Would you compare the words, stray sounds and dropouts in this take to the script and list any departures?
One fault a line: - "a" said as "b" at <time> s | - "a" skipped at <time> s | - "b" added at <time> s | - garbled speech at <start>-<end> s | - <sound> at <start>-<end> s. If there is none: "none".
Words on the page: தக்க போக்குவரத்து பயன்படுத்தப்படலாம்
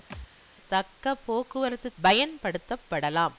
- thud at 0.1-0.3 s